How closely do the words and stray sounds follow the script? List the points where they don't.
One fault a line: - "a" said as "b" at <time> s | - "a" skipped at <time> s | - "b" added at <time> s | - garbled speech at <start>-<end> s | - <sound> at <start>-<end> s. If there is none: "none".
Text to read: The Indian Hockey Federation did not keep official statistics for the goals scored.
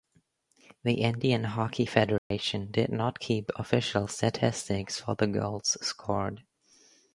- dropout at 2.2-2.3 s